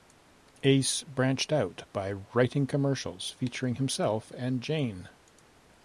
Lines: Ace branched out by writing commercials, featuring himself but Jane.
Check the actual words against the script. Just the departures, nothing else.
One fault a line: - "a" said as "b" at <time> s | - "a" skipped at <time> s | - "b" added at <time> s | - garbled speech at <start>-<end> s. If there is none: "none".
- "but" said as "and" at 4.3 s